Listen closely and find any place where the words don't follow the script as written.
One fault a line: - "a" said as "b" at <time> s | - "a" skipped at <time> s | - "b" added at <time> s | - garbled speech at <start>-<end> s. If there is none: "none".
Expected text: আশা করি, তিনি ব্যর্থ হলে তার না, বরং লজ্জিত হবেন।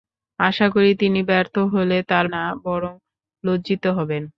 none